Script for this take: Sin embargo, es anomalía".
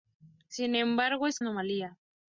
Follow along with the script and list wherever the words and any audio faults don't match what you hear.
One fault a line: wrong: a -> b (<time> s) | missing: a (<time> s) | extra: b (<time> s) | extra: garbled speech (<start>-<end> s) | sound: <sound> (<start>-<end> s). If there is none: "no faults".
no faults